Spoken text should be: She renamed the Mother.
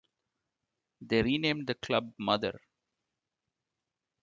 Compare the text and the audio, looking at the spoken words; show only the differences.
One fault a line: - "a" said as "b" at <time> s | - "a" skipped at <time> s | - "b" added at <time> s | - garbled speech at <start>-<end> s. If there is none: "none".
- "She" said as "They" at 1.0 s
- "club" added at 1.7 s